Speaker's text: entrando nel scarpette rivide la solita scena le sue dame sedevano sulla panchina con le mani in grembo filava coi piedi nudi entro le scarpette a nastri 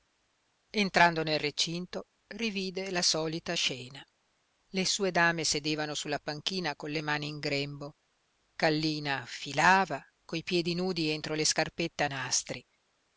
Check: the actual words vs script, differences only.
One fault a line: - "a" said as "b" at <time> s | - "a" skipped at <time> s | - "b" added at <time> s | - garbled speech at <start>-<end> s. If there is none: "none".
- "scarpette" said as "recinto" at 1.4 s
- "kallina" added at 8.5 s